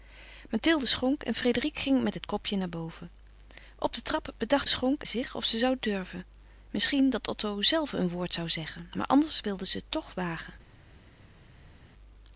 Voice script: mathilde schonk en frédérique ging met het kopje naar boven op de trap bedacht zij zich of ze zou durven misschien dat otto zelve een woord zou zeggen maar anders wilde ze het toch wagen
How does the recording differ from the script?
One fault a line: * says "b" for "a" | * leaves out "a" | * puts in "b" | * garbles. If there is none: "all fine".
* says "schonk" for "zij"